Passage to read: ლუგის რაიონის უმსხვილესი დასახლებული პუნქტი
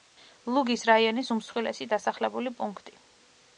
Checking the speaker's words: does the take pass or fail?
pass